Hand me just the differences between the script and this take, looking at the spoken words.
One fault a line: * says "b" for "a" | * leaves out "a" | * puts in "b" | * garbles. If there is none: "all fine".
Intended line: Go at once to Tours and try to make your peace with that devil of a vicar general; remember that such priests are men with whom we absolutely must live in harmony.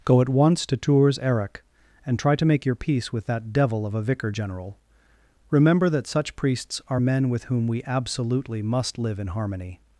* puts in "eric"